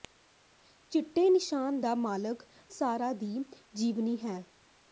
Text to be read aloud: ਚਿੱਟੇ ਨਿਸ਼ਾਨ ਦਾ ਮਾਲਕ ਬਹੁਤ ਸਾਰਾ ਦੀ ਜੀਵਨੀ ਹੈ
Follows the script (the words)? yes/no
no